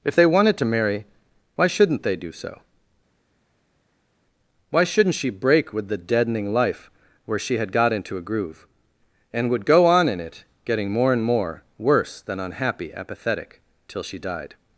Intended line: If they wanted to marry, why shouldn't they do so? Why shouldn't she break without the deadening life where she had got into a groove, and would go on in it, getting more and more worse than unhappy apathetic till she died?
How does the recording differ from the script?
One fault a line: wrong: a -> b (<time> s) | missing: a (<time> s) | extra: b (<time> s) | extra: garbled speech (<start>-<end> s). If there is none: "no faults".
wrong: without -> with (5.7 s)